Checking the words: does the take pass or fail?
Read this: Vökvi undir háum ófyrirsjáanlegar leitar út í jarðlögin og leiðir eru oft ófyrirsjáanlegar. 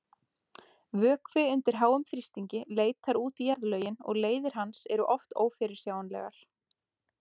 fail